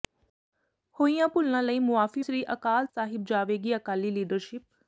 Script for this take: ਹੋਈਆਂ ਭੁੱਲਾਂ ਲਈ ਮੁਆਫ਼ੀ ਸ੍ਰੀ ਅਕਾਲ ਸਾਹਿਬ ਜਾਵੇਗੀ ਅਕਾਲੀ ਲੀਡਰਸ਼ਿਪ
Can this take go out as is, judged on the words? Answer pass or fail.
pass